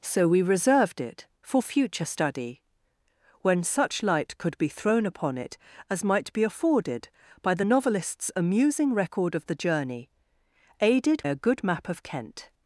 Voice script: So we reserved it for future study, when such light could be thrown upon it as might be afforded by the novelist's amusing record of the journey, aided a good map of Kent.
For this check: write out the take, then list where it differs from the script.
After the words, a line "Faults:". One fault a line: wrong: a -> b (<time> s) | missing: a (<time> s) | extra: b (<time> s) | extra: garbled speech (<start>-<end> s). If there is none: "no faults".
So we reserved it for future study, when such light could be thrown upon it as might be afforded by the novelist's amusing record of the journey, aided a good map of Kent.
Faults:
no faults